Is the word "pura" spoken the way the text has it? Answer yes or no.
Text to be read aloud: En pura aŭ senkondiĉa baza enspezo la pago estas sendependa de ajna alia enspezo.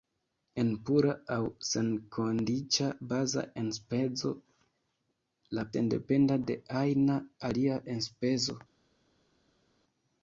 yes